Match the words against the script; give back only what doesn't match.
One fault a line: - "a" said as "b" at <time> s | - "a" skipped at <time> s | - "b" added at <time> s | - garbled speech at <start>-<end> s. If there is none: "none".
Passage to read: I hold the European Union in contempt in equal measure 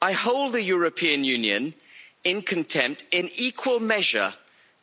none